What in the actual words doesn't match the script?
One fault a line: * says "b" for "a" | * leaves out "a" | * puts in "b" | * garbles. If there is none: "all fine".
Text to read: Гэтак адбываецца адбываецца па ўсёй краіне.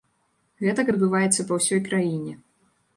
* leaves out "адбываецца"